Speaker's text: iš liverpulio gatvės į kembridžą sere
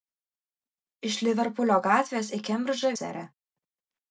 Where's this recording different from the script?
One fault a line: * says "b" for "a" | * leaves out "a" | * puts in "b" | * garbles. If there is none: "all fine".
all fine